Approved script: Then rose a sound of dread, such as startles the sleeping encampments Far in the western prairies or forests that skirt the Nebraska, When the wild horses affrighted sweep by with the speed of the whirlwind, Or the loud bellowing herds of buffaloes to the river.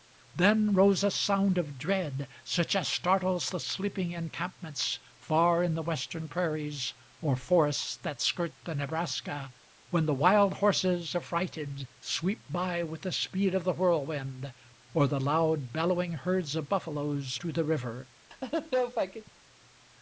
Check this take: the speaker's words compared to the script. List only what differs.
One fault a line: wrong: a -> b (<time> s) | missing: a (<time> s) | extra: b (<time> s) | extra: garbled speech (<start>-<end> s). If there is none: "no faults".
no faults